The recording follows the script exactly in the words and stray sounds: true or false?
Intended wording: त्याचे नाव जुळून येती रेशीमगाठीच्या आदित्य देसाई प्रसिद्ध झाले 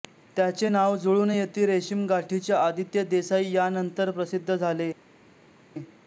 false